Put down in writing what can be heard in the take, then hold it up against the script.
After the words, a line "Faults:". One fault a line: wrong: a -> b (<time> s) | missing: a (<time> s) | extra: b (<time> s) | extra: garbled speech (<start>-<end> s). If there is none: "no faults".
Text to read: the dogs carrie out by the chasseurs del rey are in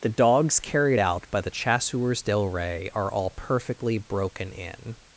the dogs carried out by the chasseurs del rey are all perfectly broken in
Faults:
wrong: carrie -> carried (0.6 s)
extra: all perfectly broken (3.1 s)